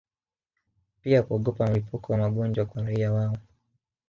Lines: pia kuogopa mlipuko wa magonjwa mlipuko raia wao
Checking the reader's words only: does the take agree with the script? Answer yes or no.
no